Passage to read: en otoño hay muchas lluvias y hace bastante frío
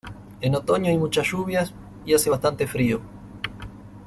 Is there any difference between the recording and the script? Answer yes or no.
no